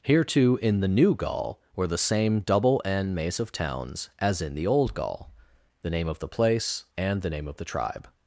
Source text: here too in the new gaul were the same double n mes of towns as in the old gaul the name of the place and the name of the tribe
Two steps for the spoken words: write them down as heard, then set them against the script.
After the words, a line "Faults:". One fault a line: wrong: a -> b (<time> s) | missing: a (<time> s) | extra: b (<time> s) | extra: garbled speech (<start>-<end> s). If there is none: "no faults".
here too in the new gaul were the same double n mace of towns as in the old gaul the name of the place and the name of the tribe
Faults:
wrong: mes -> mace (3.1 s)